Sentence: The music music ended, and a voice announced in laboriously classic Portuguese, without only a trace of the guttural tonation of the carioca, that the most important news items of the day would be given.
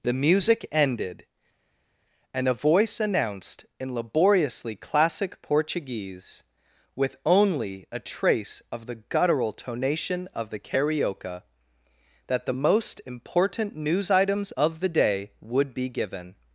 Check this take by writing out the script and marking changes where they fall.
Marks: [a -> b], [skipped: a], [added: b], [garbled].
The music [skipped: music] ended, and a voice announced in laboriously classic Portuguese, [without -> with] only a trace of the guttural tonation of the carioca, that the most important news items of the day would be given.